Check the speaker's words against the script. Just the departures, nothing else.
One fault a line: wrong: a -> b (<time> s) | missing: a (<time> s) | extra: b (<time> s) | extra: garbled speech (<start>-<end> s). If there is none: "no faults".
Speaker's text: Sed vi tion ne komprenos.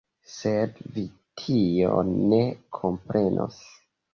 no faults